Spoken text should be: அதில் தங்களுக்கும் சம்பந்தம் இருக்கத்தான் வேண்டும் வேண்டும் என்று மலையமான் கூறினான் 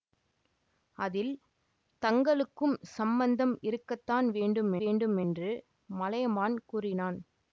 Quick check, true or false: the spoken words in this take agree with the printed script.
true